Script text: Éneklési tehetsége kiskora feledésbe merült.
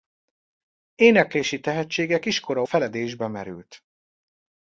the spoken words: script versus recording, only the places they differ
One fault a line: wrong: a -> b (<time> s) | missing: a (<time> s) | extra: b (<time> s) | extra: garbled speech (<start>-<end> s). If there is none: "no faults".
no faults